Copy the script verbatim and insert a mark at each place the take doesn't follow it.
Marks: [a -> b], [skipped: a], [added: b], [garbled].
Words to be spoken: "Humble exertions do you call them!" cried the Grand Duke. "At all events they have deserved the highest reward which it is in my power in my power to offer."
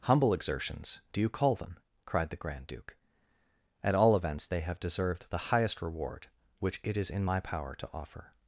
"Humble exertions do you call them!" cried the Grand Duke. "At all events they have deserved the highest reward which it is in my power [skipped: in my power] to offer."